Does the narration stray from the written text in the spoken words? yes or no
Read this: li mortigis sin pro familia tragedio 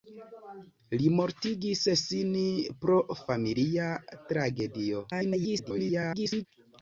yes